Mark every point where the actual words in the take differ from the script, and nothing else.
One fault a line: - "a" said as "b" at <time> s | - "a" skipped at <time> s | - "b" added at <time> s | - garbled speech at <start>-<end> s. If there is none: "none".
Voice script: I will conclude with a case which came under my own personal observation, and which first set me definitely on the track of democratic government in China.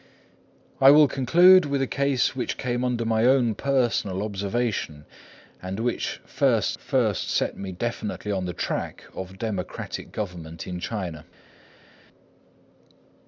- "first" added at 6.8 s